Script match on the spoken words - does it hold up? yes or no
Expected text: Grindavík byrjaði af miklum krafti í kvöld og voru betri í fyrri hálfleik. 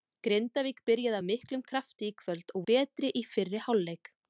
no